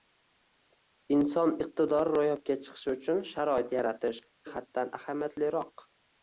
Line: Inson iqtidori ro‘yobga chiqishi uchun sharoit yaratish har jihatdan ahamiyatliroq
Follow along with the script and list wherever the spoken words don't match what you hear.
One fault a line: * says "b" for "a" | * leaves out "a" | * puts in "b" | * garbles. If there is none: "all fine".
* leaves out "har"